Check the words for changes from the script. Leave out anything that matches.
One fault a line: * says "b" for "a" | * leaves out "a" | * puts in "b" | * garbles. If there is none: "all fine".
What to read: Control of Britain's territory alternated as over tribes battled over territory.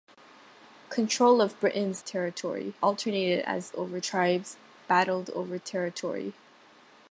all fine